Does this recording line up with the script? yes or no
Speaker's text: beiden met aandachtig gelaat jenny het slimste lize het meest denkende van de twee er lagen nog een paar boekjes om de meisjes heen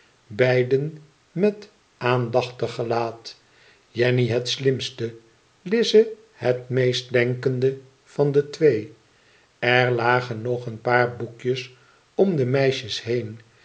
yes